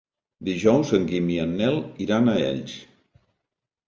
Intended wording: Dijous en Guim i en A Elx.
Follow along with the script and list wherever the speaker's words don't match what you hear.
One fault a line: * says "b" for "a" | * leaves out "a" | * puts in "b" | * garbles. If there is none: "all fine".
* puts in "Nel iran"